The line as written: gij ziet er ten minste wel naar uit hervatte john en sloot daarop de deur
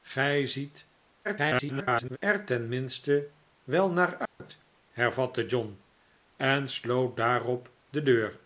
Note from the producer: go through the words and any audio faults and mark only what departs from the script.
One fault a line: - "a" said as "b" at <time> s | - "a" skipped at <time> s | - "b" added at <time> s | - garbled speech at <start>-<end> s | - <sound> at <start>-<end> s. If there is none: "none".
- garbled speech at 1.2-2.2 s
- dropout at 4.3-4.4 s